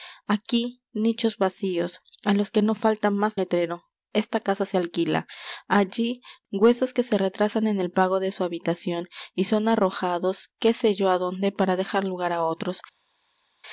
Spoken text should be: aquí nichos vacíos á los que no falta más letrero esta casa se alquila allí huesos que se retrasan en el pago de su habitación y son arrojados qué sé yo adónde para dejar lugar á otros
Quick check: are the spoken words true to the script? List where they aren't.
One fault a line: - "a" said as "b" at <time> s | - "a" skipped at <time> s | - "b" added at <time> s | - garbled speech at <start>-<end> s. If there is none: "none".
none